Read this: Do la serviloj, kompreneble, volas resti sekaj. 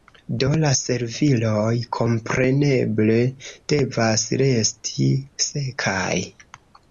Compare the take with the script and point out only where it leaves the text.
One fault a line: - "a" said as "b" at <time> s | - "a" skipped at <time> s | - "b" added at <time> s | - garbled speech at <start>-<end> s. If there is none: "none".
- "volas" said as "devas" at 3.7 s